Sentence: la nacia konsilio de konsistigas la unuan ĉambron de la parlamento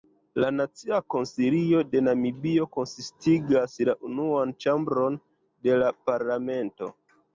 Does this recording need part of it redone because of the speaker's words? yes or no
yes